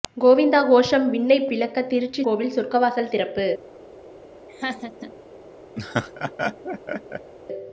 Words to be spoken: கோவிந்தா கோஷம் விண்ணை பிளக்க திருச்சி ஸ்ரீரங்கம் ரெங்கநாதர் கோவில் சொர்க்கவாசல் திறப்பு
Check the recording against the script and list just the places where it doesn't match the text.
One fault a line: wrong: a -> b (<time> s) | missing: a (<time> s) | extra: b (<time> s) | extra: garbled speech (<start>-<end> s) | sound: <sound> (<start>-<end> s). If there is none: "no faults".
missing: ஸ்ரீரங்கம் ரெங்கநாதர் (2.2 s)
sound: laugh (4.5-5.1 s)
sound: laugh (5.8-7.3 s)